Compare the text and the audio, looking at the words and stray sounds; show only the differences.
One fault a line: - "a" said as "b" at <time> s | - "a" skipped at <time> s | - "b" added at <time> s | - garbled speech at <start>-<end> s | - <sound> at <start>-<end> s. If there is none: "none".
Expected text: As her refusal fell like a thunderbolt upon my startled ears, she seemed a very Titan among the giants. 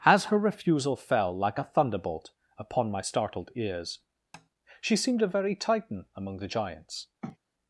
- tap at 4.3-4.5 s
- sniff at 7.2-7.4 s